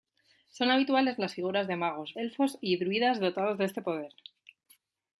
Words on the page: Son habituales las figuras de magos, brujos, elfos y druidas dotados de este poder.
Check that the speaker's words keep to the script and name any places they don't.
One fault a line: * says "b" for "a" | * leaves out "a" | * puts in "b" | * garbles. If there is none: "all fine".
* leaves out "brujos"